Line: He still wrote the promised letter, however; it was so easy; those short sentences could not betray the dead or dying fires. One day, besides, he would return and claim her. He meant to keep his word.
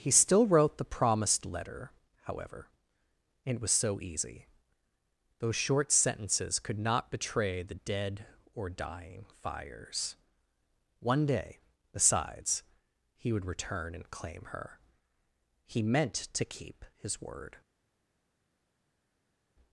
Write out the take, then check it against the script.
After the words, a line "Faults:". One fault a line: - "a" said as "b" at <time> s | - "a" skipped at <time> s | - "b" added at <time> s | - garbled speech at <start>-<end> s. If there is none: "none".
He still wrote the promised letter, however; it was so easy; those short sentences could not betray the dead or dying fires. One day, besides, he would return and claim her. He meant to keep his word.
Faults:
none